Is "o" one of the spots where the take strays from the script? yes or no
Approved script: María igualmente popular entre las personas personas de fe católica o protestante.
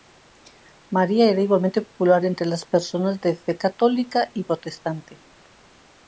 yes